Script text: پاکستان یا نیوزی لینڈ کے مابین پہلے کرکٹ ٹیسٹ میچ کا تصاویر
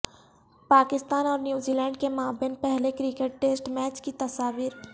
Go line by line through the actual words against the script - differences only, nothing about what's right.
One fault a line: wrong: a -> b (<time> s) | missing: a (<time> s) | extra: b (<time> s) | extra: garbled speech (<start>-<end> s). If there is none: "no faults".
wrong: یا -> اور (1.2 s)
wrong: کا -> کی (4.0 s)